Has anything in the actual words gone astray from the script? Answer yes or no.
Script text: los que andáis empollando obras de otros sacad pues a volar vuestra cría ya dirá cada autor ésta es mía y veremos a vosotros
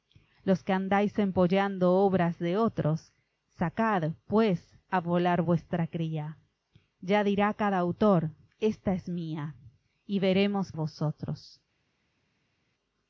no